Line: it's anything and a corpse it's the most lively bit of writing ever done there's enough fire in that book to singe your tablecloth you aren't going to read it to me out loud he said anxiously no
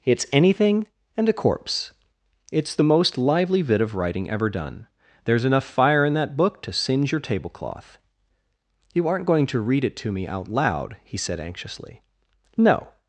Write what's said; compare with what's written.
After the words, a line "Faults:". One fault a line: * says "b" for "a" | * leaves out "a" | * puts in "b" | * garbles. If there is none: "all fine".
it's anything and a corpse it's the most lively bit of writing ever done there's enough fire in that book to singe your tablecloth you aren't going to read it to me out loud he said anxiously no
Faults:
all fine